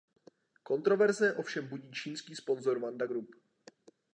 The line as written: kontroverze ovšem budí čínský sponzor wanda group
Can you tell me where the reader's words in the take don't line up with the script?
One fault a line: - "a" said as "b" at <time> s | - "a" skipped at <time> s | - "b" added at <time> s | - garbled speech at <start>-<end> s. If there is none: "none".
none